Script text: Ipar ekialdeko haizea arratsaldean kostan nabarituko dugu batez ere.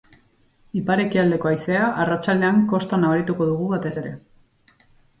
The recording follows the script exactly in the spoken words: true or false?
true